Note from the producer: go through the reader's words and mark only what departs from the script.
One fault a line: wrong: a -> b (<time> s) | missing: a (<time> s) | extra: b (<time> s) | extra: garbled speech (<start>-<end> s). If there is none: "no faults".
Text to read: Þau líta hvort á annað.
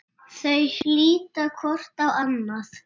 no faults